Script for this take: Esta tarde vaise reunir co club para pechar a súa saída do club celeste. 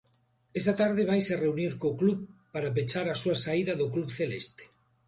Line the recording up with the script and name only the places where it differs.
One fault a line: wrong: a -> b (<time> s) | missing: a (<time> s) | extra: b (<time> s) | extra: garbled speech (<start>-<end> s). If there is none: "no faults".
no faults